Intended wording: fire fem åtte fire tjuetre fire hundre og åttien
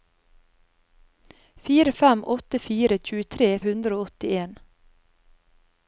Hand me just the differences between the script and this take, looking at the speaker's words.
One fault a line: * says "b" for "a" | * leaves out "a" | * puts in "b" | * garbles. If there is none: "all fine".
* leaves out "fire"